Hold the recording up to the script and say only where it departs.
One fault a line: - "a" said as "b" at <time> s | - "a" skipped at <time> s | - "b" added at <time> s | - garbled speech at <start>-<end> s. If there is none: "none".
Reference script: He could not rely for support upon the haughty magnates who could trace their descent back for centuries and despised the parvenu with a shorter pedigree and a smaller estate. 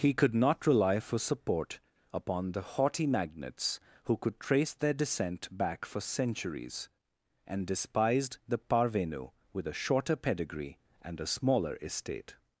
none